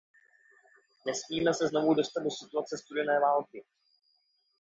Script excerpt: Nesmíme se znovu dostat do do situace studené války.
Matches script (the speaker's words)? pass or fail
fail